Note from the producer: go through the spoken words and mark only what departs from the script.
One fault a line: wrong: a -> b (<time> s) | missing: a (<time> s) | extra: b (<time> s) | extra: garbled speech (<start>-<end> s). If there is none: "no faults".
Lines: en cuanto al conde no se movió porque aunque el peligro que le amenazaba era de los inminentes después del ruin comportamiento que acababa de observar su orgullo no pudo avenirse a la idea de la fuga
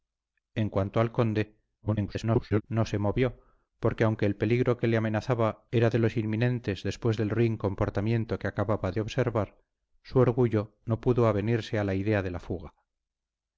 extra: garbled speech (1.8-2.6 s)